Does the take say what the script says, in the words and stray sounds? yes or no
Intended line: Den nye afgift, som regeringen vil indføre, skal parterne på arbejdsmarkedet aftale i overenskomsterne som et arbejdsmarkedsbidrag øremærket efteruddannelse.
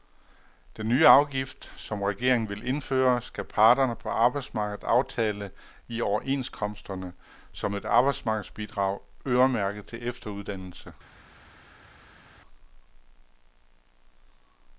no